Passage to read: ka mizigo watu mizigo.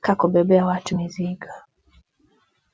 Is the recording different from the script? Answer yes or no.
yes